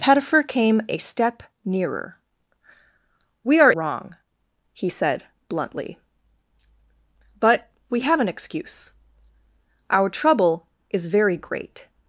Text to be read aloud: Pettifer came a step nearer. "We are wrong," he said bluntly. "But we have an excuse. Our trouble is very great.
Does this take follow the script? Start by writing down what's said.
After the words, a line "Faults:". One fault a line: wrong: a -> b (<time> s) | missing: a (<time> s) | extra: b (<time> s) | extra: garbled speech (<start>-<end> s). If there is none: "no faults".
Pettifer came a step nearer. "We are wrong," he said bluntly. "But we have an excuse. Our trouble is very great.
Faults:
no faults